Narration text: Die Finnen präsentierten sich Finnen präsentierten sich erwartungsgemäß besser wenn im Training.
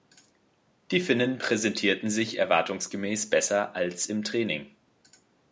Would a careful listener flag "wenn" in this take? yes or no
yes